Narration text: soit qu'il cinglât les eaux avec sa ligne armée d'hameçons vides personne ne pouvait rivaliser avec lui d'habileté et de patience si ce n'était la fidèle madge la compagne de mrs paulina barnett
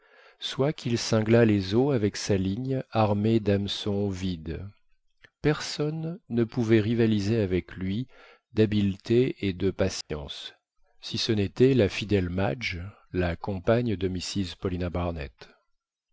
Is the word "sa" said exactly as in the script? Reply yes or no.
yes